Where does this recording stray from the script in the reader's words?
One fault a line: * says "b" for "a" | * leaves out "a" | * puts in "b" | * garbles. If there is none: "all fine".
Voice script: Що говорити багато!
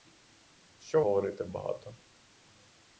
all fine